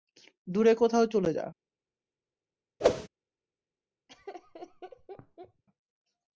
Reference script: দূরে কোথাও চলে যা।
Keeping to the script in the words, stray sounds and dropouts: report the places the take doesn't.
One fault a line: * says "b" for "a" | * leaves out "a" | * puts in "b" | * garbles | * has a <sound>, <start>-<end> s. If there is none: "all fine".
* has a whoosh, 2.8-3.1 s
* has a laugh, 4.1-5.6 s